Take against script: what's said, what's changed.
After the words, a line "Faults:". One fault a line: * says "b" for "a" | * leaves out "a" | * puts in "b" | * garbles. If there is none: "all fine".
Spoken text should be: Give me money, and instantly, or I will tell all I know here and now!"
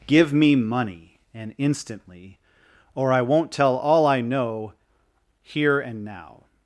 Give me money, and instantly, or I won't tell all I know here and now!"
Faults:
* says "won't" for "will"